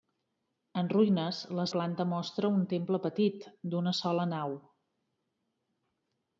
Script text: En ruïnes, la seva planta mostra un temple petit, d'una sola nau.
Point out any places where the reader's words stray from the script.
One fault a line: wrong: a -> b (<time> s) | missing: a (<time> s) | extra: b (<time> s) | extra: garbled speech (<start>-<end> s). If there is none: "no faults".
missing: seva (1.7 s)